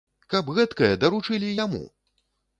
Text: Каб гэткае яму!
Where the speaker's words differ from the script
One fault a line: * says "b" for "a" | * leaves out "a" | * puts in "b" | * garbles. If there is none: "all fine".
* puts in "даручылі"